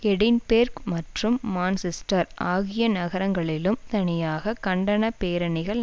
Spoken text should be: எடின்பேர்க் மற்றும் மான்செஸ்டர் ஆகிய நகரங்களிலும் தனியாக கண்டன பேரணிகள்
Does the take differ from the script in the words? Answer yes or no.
no